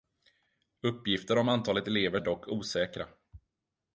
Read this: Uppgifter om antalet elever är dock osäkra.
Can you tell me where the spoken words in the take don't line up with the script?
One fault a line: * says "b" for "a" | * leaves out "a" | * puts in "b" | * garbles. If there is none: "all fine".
all fine